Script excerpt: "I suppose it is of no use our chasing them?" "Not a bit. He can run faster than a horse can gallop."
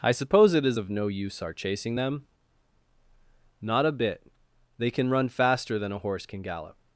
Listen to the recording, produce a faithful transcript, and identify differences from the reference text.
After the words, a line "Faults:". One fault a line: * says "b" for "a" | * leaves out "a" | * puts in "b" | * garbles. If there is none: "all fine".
"I suppose it is of no use our chasing them?" "Not a bit. They can run faster than a horse can gallop."
Faults:
* says "They" for "He"